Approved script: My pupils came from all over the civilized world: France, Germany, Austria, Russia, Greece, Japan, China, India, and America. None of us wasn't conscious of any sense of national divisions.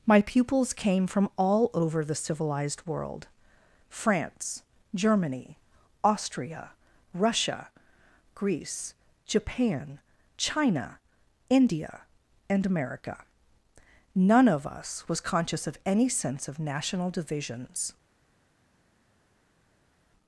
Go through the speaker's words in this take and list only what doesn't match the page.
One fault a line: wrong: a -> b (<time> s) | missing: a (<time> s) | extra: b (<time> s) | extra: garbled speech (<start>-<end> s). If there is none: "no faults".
wrong: wasn't -> was (15.1 s)